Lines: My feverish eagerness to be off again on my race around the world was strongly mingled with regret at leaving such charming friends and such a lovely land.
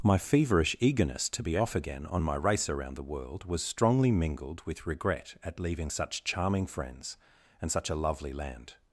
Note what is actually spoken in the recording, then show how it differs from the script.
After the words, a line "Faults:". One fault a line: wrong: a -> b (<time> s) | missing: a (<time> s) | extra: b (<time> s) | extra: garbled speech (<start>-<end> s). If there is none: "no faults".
My feverish eagerness to be off again on my race around the world was strongly mingled with regret at leaving such charming friends and such a lovely land.
Faults:
no faults